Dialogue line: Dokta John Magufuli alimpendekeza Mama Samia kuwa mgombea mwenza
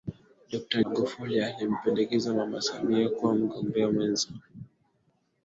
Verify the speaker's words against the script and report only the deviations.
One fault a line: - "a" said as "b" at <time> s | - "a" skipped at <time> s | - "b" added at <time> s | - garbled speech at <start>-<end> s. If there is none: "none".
- "John" skipped at 0.8 s